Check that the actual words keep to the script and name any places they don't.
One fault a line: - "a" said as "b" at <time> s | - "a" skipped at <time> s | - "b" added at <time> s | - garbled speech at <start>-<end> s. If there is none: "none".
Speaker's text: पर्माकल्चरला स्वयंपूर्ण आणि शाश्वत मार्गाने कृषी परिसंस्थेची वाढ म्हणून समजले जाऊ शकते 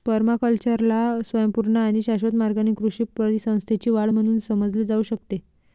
none